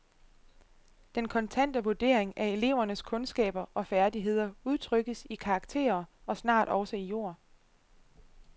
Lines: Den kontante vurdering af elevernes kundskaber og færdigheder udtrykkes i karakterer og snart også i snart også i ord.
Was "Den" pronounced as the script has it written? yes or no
yes